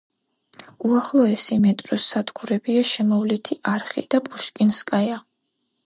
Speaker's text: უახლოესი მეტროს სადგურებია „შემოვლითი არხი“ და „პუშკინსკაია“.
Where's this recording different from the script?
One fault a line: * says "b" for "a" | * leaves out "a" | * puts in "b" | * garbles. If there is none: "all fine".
all fine